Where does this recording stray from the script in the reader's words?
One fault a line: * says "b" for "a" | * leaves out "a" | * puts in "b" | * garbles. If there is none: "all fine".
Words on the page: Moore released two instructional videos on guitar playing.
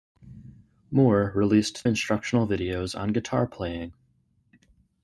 * leaves out "two"